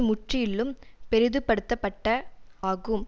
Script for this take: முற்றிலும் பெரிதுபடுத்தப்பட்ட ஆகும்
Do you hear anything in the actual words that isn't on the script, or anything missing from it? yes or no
no